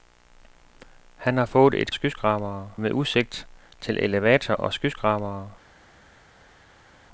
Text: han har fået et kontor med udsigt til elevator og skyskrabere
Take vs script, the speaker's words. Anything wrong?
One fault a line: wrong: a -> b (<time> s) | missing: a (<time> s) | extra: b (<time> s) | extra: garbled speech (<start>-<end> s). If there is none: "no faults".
wrong: kontor -> skyskrabere (1.9 s)